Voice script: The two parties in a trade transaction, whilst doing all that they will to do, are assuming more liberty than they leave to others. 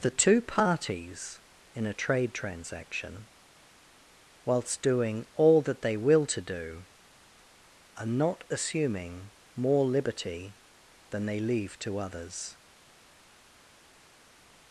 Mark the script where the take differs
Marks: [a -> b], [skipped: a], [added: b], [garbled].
The two parties in a trade transaction, whilst doing all that they will to do, are [added: not] assuming more liberty than they leave to others.